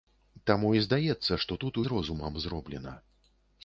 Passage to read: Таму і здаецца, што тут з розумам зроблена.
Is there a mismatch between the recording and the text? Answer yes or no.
no